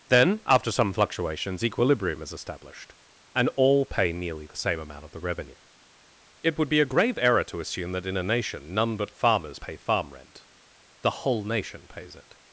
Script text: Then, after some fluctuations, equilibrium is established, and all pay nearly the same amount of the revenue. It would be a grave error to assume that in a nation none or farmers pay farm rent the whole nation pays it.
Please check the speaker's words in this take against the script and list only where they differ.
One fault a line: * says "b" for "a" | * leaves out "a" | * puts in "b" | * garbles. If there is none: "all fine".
* says "but" for "or"